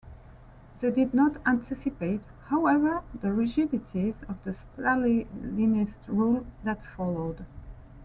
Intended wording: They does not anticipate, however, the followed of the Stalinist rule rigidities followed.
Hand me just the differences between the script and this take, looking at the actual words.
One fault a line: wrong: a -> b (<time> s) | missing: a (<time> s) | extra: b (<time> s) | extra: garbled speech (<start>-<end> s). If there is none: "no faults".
wrong: does -> did (0.9 s)
wrong: followed -> rigidities (3.3 s)
wrong: rigidities -> that (6.6 s)